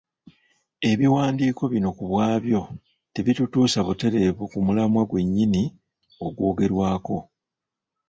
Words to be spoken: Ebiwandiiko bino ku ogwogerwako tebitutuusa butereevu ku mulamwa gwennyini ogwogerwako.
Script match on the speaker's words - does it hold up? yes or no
no